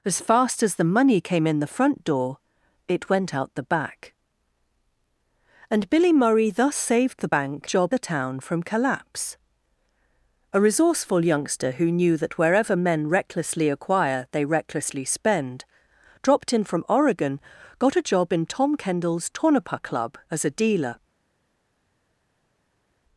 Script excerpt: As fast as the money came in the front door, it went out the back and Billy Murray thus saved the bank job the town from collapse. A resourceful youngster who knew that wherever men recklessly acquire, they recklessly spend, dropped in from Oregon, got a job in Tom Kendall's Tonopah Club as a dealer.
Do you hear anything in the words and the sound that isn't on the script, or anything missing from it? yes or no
no